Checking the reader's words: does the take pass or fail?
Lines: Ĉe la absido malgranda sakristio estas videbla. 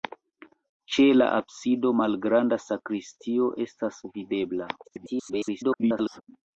fail